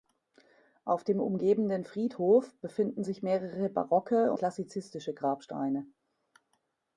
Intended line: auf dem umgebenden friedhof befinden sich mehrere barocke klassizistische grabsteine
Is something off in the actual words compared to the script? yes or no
no